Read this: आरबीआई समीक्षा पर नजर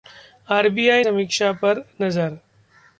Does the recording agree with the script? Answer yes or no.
yes